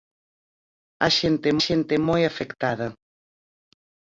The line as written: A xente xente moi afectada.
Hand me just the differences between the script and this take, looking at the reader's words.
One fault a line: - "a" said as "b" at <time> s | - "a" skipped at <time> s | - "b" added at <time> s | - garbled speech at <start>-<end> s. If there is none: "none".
none